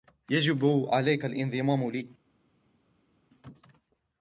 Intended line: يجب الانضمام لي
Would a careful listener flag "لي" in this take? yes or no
no